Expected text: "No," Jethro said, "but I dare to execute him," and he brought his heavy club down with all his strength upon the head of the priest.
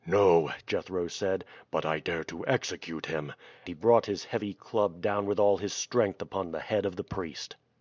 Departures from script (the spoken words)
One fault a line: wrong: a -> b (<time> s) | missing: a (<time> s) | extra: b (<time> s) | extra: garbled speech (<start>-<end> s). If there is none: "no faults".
missing: and (3.3 s)